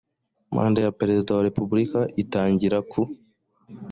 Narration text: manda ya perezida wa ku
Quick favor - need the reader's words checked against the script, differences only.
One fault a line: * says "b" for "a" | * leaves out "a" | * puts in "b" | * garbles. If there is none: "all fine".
* puts in "repubulika itangira"